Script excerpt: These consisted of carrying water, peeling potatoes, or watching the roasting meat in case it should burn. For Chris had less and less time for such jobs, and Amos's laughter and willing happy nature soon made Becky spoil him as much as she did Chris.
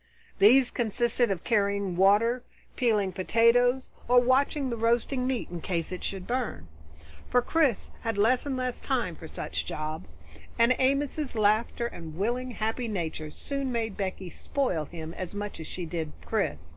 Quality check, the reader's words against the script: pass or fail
pass